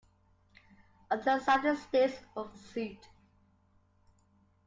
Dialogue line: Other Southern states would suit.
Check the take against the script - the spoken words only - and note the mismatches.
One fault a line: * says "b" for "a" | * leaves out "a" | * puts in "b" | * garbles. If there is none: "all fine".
all fine